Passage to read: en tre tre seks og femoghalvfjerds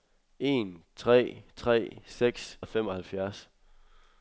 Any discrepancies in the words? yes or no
no